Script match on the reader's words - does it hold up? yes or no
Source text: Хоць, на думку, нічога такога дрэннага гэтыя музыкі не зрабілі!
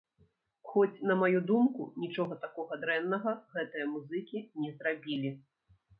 no